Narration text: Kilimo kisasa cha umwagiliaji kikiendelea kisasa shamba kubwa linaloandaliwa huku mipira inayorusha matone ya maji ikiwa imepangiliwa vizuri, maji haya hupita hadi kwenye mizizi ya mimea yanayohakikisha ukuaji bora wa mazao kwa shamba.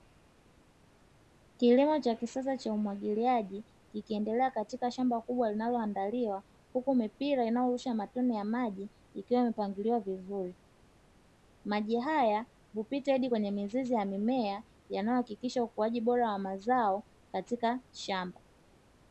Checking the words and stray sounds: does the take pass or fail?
fail